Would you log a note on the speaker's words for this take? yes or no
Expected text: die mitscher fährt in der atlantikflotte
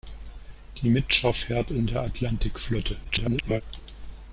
yes